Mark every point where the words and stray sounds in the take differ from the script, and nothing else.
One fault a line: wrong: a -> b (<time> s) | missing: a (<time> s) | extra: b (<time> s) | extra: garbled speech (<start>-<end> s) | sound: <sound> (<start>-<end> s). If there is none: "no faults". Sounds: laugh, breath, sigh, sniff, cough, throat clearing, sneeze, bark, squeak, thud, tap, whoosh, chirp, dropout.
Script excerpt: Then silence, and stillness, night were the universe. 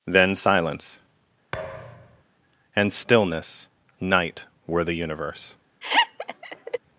sound: thud (1.5-2.2 s)
sound: laugh (5.8-6.8 s)